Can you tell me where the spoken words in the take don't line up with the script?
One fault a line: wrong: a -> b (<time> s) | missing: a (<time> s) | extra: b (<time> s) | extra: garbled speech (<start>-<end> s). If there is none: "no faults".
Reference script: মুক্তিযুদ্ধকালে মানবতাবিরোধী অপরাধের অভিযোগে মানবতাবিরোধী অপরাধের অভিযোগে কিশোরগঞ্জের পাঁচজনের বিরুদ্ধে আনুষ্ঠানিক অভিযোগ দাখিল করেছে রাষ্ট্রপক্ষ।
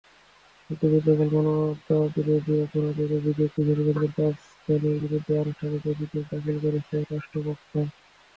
missing: মানবতাবিরোধী অপরাধের অভিযোগে (3.5 s)